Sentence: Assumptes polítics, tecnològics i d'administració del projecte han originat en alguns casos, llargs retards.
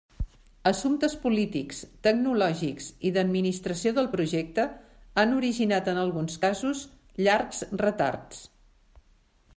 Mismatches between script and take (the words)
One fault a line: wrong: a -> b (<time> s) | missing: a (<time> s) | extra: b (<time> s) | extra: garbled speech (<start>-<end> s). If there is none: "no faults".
no faults